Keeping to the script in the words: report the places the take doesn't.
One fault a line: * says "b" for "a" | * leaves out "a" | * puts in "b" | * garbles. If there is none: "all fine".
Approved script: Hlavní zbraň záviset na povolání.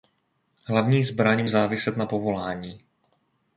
all fine